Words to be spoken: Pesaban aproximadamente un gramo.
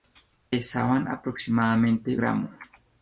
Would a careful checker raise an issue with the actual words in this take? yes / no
yes